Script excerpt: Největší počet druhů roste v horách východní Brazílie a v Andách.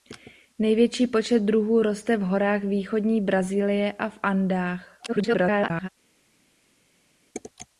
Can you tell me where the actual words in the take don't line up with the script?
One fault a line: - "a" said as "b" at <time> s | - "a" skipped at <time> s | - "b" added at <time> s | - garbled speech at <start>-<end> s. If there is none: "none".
- garbled speech at 5.1-5.9 s